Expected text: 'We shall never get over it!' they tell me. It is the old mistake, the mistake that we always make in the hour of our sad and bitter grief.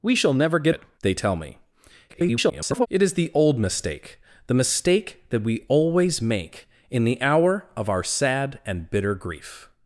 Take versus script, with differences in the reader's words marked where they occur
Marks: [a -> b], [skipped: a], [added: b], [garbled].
'We shall never get [skipped: over] it!' they tell me. [garbled] It is the old mistake, the mistake that we always make in the hour of our sad and bitter grief.